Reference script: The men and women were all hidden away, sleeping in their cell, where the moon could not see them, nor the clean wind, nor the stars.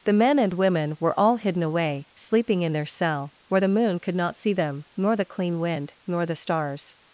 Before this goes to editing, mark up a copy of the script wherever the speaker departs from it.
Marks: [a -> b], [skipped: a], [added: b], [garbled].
The men and women were all hidden away, sleeping in their cell, where the moon could not see them, nor the clean wind, nor the stars.